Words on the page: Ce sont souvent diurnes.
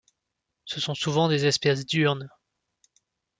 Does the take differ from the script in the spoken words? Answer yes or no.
yes